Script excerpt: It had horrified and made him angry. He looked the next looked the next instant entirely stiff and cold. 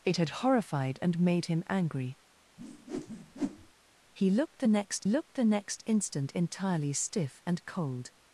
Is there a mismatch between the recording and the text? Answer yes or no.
no